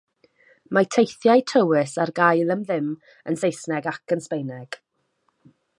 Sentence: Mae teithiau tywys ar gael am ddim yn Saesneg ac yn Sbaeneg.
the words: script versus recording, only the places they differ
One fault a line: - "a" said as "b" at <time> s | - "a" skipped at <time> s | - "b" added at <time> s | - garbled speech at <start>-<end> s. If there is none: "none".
none